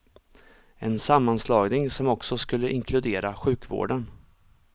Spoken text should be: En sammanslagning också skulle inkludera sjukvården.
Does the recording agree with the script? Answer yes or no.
no